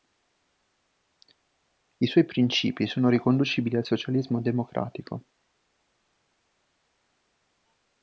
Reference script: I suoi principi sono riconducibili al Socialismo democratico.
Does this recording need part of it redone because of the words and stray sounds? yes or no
no